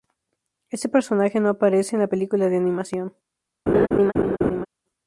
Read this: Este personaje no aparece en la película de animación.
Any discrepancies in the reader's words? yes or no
no